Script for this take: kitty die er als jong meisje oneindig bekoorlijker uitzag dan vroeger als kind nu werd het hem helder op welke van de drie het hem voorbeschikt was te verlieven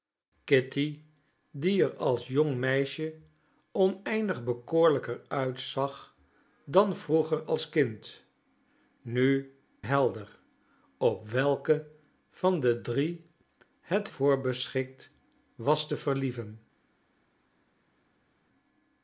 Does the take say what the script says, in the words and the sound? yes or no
no